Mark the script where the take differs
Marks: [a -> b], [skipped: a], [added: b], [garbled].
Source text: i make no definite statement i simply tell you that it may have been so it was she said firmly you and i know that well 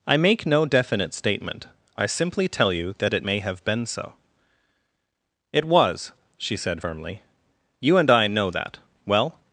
i make no definite statement i simply tell you that it may have been so it was she said firmly you and i know that well